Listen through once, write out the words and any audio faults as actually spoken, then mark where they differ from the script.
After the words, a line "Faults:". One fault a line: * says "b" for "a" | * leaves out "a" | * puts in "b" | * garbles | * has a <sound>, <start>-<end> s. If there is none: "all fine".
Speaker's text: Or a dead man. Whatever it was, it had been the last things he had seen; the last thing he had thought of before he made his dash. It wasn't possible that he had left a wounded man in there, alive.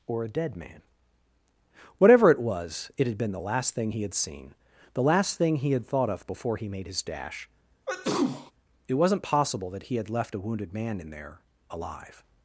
Or a dead man. Whatever it was, it had been the last thing he had seen; the last thing he had thought of before he made his dash. It wasn't possible that he had left a wounded man in there, alive.
Faults:
* says "thing" for "things"
* has a sneeze, 7.9-8.5 s